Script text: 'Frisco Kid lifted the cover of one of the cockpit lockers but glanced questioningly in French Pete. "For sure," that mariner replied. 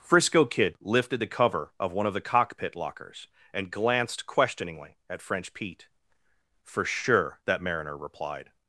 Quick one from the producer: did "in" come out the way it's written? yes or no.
no